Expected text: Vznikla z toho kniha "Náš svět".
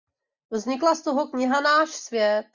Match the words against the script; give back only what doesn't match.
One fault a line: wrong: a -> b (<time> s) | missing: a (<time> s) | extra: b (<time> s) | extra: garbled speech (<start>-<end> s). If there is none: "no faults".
no faults